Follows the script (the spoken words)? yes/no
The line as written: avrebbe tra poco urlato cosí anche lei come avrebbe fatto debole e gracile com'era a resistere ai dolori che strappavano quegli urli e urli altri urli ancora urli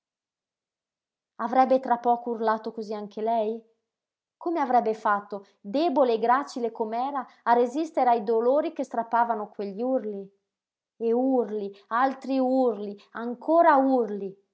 yes